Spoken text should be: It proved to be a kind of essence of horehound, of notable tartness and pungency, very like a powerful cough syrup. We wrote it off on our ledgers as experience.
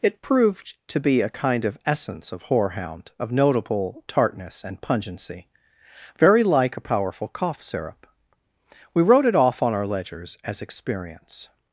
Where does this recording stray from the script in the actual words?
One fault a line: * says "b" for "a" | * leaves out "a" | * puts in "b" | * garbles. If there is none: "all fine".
all fine